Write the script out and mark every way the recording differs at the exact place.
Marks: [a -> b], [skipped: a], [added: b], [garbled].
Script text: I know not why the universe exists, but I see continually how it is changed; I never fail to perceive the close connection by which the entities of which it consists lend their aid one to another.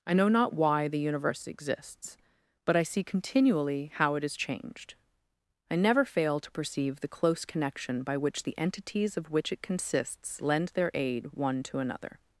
I know not why the universe exists, but I see continually how it is changed; I never fail to perceive the close connection by which the entities of which it consists lend their aid one to another.